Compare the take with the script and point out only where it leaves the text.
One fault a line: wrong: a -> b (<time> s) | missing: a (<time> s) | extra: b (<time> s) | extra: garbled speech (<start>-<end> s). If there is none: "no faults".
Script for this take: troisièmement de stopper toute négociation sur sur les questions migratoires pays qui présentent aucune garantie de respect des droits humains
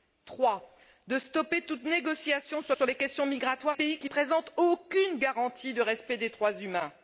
no faults